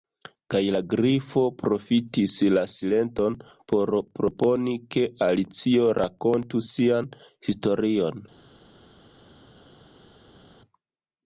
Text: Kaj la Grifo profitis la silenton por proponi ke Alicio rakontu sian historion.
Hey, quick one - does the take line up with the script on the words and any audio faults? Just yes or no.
yes